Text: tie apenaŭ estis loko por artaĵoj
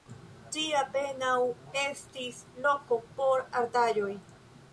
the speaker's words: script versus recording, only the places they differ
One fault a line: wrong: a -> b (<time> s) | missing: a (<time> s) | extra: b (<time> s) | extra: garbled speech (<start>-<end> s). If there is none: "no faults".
no faults